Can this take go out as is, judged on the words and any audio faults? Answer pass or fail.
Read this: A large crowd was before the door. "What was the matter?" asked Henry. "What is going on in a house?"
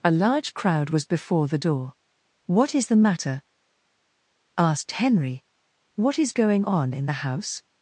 fail